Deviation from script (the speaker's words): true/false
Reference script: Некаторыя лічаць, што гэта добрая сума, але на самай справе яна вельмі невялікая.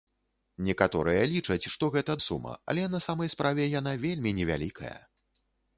true